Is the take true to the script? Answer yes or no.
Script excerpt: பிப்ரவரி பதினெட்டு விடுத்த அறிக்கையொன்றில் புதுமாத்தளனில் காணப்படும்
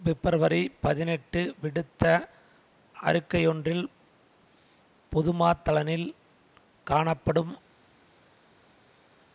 yes